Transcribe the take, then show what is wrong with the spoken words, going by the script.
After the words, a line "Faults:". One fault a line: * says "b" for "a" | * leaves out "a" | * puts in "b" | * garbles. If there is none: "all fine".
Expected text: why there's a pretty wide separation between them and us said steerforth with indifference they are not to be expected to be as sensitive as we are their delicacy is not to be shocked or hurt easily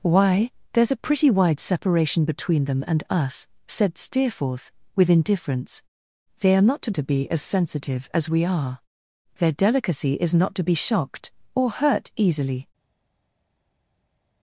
why there's a pretty wide separation between them and us said steerforth with indifference they are not to to be as sensitive as we are their delicacy is not to be shocked or hurt easily
Faults:
* leaves out "be expected"